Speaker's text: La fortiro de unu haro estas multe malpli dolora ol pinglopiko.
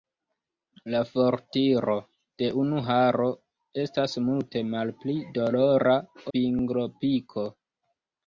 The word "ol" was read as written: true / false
false